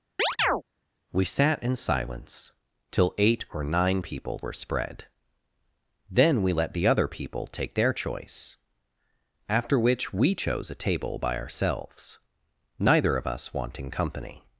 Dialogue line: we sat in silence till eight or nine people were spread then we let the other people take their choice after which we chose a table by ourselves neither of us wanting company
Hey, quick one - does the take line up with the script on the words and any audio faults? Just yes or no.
no